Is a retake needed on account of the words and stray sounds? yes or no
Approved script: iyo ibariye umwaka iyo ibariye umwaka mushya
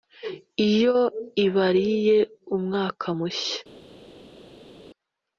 yes